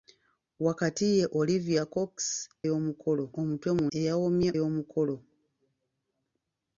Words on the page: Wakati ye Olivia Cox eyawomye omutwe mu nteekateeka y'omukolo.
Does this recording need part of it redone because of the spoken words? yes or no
yes